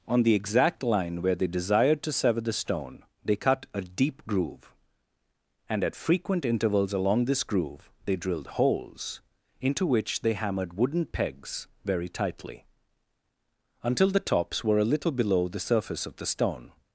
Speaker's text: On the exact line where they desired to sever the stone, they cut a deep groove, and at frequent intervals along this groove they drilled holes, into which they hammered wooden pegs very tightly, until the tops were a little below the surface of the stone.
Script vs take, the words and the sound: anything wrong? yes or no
no